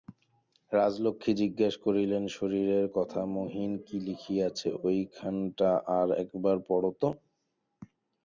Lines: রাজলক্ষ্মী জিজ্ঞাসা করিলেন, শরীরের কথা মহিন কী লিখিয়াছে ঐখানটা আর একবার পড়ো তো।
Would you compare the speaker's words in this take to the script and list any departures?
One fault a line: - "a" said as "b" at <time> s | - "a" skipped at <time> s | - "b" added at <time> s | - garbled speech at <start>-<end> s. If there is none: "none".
none